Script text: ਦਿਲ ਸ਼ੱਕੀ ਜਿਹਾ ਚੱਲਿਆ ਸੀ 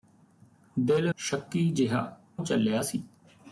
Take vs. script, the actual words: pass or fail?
pass